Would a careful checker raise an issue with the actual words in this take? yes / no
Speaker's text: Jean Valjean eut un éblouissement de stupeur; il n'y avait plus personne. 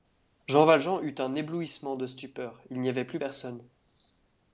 no